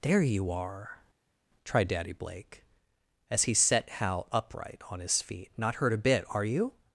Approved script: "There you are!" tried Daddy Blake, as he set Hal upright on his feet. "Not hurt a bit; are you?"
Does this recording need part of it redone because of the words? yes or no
no